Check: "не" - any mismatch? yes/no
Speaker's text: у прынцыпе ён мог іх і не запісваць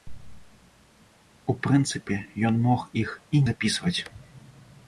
yes